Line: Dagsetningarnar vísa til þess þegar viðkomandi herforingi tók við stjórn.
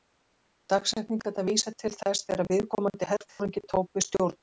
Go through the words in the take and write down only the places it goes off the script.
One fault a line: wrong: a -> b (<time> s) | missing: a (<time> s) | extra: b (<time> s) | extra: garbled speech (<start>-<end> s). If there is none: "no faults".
no faults